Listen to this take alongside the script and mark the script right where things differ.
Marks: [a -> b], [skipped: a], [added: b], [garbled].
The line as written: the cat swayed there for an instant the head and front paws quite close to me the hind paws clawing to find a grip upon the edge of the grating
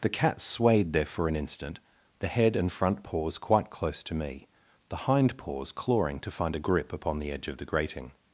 the cat swayed there for an instant the head and front paws quite close to me the hind paws clawing to find a grip upon the edge of the grating